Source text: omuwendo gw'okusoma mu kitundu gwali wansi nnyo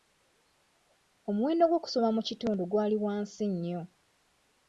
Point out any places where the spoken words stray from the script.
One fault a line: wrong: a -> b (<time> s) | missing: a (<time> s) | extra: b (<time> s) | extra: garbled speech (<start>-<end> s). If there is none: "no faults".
no faults